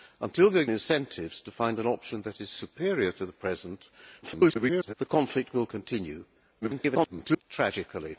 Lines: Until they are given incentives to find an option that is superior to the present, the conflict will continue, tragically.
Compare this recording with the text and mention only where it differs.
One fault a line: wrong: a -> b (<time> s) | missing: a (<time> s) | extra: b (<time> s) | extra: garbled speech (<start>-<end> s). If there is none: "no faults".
missing: given (0.7 s)
extra: garbled speech (4.2-4.9 s)
extra: garbled speech (6.6-7.4 s)